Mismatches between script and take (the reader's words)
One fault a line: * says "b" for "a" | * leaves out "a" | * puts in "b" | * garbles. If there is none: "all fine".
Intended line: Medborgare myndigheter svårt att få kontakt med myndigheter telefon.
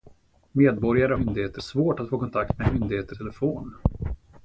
all fine